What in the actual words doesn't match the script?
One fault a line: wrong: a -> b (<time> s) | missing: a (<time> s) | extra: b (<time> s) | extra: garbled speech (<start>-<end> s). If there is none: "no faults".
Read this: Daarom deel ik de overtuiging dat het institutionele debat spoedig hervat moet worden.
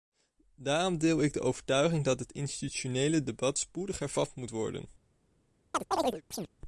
no faults